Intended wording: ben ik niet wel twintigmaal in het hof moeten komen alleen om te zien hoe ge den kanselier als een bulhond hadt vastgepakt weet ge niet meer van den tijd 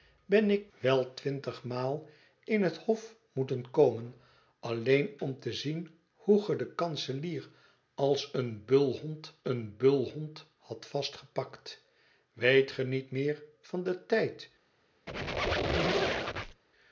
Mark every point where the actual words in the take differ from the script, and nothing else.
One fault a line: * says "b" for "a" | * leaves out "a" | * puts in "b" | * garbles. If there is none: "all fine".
* leaves out "niet"
* puts in "een bulhond"